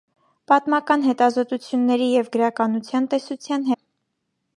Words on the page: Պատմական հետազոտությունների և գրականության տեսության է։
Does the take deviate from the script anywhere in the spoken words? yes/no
no